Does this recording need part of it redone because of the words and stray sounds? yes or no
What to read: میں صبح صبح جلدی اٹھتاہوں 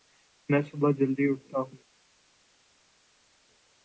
yes